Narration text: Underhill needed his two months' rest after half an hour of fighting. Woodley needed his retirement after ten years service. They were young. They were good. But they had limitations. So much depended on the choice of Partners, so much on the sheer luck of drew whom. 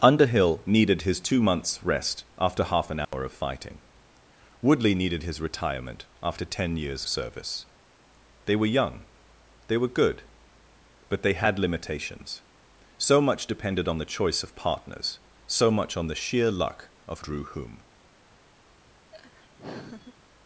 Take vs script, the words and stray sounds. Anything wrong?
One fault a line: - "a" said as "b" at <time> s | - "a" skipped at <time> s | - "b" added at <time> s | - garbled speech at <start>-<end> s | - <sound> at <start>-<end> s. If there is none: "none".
- dropout at 3.0-3.1 s
- laugh at 19.1-20.1 s